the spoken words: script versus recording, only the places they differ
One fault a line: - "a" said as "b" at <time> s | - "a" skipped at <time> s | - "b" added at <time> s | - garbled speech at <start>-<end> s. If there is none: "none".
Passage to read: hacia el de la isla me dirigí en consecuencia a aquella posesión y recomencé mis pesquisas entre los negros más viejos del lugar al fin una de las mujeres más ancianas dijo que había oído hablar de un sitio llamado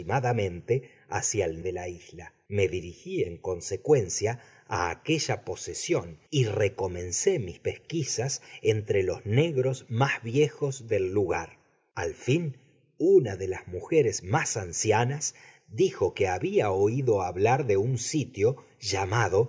none